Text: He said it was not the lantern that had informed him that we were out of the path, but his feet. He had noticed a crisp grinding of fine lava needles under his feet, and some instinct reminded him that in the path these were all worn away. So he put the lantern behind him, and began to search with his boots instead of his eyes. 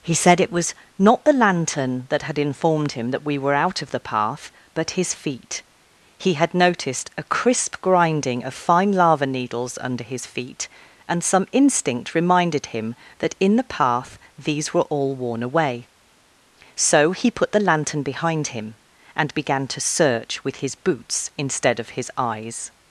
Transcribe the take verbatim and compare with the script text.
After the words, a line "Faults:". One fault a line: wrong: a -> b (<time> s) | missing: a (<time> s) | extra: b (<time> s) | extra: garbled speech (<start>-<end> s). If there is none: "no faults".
He said it was not the lantern that had informed him that we were out of the path, but his feet. He had noticed a crisp grinding of fine lava needles under his feet, and some instinct reminded him that in the path these were all worn away. So he put the lantern behind him, and began to search with his boots instead of his eyes.
Faults:
no faults